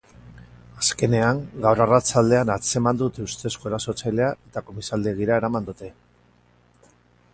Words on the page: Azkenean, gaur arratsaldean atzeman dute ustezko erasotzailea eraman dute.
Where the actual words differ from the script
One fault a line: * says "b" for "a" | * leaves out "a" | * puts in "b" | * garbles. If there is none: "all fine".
* puts in "eta komisaldegira"